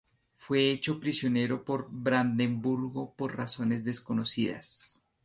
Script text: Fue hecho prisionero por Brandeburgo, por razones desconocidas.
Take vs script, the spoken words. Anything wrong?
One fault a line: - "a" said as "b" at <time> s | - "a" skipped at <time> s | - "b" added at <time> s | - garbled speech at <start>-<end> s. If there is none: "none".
none